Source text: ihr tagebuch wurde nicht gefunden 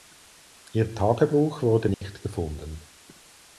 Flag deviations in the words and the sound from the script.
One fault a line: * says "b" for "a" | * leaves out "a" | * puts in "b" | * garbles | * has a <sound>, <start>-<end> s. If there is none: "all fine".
* has a dropout, 1.9-2.0 s